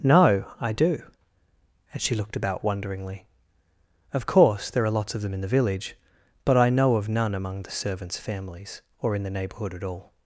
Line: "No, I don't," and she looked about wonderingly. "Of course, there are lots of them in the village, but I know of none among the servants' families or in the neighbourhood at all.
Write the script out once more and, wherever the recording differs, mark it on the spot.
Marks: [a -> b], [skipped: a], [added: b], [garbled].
"No, I [don't," -> do] and she looked about wonderingly. "Of course, there are lots of them in the village, but I know of none among the servants' families or in the neighbourhood at all.